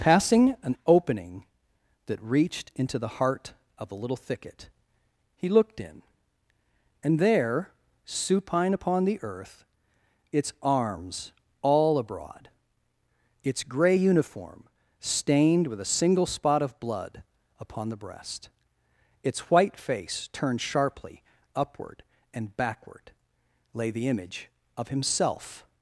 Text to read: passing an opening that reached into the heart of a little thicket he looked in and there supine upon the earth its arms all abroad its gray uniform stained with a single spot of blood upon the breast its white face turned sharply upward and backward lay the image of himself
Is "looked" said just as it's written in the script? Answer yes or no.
yes